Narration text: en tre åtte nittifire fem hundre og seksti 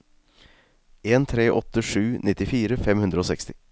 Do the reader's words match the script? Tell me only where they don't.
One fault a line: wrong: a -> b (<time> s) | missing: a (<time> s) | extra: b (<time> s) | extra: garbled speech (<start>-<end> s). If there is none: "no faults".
extra: sju (1.8 s)